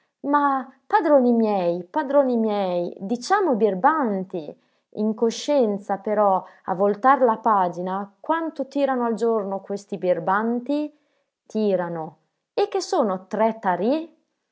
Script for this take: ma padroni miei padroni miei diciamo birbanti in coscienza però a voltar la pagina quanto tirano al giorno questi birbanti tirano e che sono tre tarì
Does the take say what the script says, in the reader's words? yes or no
yes